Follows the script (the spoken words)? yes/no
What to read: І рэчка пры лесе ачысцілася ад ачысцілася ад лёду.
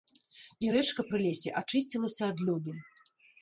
no